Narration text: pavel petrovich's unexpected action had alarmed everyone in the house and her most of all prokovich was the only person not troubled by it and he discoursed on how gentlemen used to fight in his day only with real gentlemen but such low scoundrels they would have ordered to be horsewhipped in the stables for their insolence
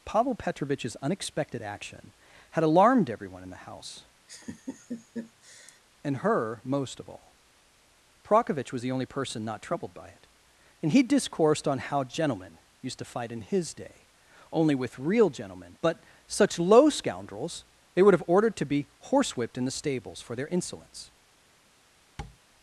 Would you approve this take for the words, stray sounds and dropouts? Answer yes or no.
no